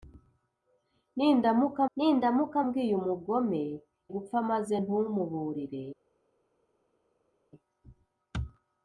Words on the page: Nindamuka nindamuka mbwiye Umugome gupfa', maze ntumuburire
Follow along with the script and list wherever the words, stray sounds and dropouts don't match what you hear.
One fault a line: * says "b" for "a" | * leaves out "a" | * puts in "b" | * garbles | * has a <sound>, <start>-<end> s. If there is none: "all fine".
all fine